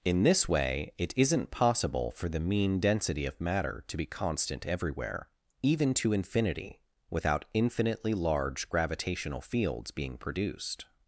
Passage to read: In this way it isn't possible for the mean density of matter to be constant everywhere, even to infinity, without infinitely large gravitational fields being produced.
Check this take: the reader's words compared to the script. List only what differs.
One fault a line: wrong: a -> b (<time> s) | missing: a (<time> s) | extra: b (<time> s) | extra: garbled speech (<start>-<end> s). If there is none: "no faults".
no faults